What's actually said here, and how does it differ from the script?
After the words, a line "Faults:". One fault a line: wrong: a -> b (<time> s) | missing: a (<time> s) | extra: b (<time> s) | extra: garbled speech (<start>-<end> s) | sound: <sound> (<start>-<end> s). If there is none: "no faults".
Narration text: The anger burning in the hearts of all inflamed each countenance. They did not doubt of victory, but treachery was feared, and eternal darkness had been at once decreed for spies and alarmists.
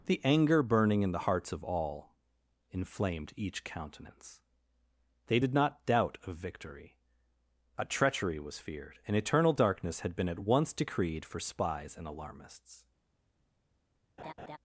The anger burning in the hearts of all inflamed each countenance. They did not doubt of victory, a treachery was feared, and eternal darkness had been at once decreed for spies and alarmists.
Faults:
wrong: but -> a (7.8 s)
sound: laugh (14.2-14.6 s)